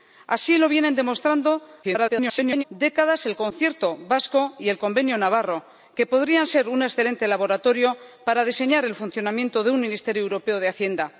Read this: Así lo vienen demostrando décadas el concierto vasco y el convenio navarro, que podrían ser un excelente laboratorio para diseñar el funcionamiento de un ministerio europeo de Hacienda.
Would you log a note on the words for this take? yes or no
yes